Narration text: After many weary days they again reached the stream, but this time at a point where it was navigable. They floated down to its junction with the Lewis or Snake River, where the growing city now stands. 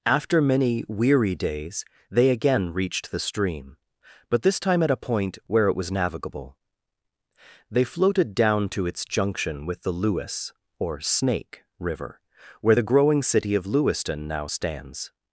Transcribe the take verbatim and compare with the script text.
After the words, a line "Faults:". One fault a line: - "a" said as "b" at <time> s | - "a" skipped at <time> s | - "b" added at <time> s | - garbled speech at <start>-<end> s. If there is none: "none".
After many weary days they again reached the stream, but this time at a point where it was navigable. They floated down to its junction with the Lewis or Snake River, where the growing city of Lewiston now stands.
Faults:
- "of Lewiston" added at 13.5 s